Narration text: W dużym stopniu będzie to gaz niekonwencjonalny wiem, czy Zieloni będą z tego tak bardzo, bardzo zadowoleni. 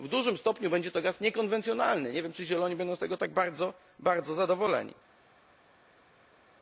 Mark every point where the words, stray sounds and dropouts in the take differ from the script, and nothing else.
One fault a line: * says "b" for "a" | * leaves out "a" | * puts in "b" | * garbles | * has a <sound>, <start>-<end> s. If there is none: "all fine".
* puts in "nie"